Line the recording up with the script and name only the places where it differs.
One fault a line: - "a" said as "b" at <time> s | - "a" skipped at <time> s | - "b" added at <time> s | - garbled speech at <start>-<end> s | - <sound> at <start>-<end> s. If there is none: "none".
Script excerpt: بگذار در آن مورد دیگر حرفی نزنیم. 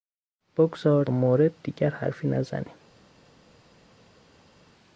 - "در" skipped at 1.1 s